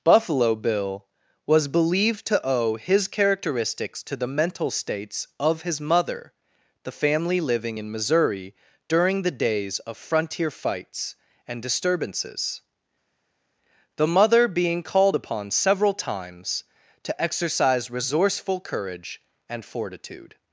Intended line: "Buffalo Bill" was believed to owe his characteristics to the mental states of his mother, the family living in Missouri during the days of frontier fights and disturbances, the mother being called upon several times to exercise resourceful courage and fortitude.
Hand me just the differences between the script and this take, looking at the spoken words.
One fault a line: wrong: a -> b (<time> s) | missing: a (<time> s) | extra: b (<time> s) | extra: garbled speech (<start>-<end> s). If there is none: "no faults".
no faults